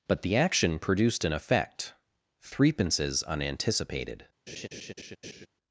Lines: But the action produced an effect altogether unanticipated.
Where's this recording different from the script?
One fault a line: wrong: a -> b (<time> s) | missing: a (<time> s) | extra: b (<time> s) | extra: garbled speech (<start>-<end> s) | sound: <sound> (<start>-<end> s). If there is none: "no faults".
wrong: altogether -> threepences (2.4 s)
sound: laugh (4.5-5.5 s)